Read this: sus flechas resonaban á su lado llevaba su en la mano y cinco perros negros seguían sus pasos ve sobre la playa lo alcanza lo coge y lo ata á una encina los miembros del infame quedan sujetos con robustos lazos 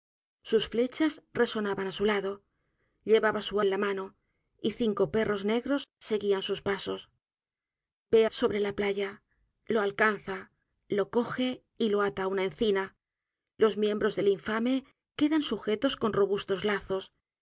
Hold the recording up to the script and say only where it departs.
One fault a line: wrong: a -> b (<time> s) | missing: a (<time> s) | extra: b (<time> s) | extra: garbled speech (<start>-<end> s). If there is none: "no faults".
no faults